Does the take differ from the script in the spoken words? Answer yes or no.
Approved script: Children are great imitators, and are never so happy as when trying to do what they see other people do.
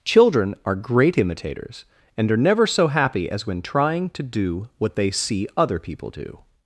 no